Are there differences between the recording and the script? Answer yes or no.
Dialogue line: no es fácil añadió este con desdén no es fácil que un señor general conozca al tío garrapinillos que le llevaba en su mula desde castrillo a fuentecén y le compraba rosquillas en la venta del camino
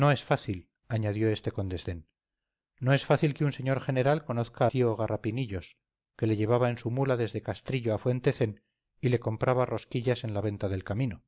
yes